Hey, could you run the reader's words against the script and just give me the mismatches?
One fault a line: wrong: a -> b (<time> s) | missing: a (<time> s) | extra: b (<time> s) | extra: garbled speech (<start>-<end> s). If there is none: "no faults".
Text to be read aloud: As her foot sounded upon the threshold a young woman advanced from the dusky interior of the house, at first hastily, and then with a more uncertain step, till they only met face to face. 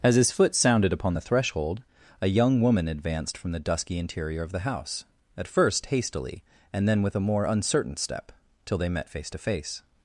wrong: her -> his (0.1 s)
missing: only (8.9 s)